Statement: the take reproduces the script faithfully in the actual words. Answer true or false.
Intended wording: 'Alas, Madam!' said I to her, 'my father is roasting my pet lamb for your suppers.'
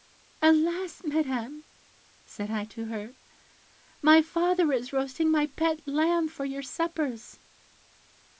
true